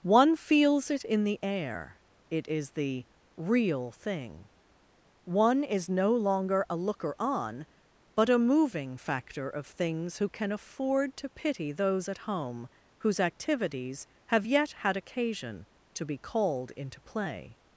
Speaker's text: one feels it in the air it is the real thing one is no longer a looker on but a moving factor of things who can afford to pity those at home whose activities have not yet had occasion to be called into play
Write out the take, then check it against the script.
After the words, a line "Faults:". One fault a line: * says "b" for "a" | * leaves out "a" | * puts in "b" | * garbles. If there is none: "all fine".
one feels it in the air it is the real thing one is no longer a looker on but a moving factor of things who can afford to pity those at home whose activities have yet had occasion to be called into play
Faults:
* leaves out "not"